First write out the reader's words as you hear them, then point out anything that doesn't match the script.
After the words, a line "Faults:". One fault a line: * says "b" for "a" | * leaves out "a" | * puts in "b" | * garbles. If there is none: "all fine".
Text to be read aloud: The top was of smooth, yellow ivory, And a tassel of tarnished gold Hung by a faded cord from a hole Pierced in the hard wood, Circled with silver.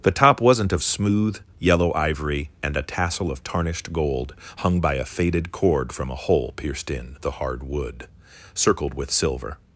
The top wasn't of smooth, yellow ivory, And a tassel of tarnished gold Hung by a faded cord from a hole Pierced in the hard wood, Circled with silver.
Faults:
* says "wasn't" for "was"